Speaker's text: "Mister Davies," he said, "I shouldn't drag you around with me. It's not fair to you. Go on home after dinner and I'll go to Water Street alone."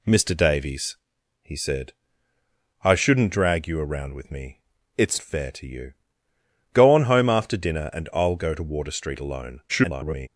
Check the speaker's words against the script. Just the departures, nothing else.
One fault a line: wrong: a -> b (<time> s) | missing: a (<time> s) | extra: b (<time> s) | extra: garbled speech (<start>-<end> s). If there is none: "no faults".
missing: not (5.2 s)
extra: garbled speech (9.7-10.3 s)